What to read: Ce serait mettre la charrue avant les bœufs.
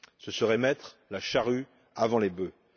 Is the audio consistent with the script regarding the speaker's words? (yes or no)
yes